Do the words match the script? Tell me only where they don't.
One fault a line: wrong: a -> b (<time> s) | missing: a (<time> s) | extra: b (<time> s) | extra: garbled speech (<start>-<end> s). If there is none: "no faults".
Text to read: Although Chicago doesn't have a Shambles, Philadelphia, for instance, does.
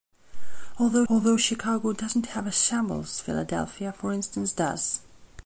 extra: although (1.1 s)